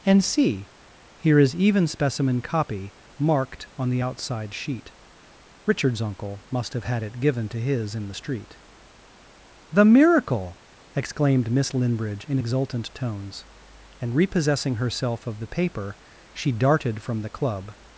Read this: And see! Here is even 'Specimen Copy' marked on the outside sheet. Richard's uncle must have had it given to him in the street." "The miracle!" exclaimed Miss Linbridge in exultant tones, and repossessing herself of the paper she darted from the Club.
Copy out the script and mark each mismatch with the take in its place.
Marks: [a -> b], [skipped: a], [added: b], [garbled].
And see! Here is even 'Specimen Copy' marked on the outside sheet. Richard's uncle must have had it given to [him -> his] in the street." "The miracle!" exclaimed Miss Linbridge in exultant tones, and repossessing herself of the paper she darted from the Club.